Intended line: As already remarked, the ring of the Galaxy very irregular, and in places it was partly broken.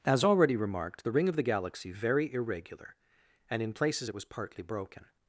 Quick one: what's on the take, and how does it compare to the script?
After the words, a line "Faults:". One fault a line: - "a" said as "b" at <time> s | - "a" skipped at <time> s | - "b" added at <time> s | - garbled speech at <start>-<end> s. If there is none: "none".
As already remarked, the ring of the Galaxy very irregular, and in places it was partly broken.
Faults:
none